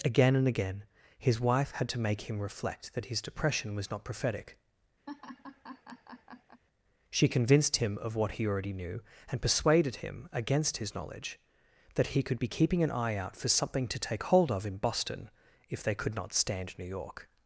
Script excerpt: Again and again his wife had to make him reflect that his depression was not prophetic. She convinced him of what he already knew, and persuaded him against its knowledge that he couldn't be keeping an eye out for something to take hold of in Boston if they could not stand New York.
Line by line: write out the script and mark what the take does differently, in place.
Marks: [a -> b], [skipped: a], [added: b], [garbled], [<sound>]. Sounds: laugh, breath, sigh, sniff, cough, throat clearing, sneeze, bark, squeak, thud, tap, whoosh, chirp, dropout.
Again and again his wife had to make him reflect that his depression was not prophetic. [laugh] She convinced him of what he already knew, and persuaded him against [its -> his] knowledge that he [couldn't -> could] be keeping an eye out for something to take hold of in Boston if they could not stand New York.